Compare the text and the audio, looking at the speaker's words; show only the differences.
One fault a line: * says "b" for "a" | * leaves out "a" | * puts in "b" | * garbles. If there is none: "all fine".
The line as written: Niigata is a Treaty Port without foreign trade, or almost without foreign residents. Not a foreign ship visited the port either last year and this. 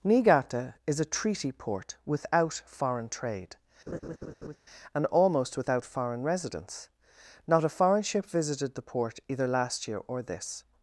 * says "and" for "or"
* says "or" for "and"